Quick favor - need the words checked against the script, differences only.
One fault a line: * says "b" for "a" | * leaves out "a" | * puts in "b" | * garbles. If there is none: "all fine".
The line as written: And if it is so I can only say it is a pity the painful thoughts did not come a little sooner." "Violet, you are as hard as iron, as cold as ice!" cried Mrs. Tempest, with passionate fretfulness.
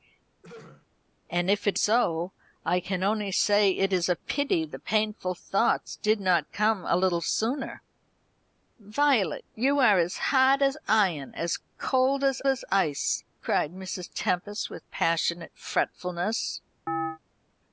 * leaves out "is"
* puts in "as"